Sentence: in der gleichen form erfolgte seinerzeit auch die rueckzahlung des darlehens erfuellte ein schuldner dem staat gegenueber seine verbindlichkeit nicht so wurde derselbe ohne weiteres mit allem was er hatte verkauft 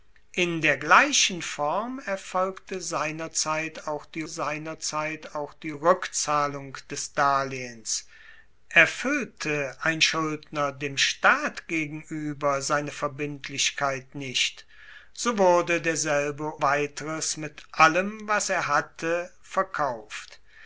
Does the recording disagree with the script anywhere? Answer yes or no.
yes